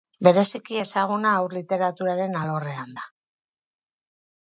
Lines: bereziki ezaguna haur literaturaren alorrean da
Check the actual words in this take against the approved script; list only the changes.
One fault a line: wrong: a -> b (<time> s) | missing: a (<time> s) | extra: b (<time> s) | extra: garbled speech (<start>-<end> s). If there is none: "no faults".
no faults